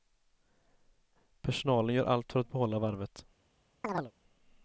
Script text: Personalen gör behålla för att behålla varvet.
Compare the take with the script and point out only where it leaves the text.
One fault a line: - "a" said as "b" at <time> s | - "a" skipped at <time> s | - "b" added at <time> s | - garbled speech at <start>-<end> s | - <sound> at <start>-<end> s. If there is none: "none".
- "behålla" said as "allt" at 2.0 s
- chirp at 3.8-4.1 s